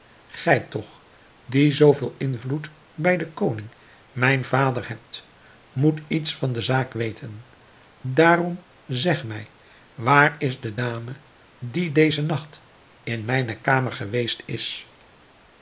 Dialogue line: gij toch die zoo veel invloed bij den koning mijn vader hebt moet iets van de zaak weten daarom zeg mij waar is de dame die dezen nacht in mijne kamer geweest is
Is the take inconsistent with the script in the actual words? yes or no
no